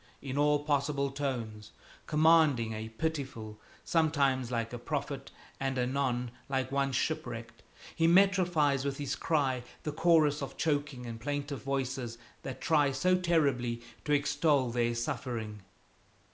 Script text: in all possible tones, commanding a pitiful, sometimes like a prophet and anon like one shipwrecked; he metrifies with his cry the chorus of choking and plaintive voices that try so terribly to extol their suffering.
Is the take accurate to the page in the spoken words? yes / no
yes